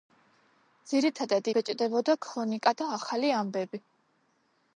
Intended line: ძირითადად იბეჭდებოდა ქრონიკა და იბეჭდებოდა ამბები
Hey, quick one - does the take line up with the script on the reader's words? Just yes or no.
no